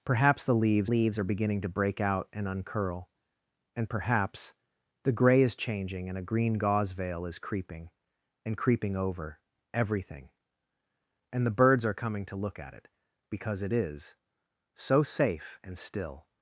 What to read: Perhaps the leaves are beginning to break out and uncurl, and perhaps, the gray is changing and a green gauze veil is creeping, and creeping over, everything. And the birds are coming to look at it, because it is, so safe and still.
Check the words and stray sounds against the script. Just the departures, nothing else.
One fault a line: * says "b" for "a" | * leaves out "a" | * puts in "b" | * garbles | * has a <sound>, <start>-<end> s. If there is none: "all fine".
* puts in "leaves"